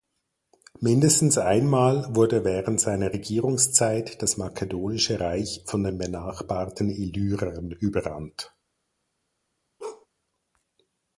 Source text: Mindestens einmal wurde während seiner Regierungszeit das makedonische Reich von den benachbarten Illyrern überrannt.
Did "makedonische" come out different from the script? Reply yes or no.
no